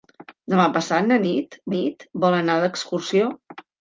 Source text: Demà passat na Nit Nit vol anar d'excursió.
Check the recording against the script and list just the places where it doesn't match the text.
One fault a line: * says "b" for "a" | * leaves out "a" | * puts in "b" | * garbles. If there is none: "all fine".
all fine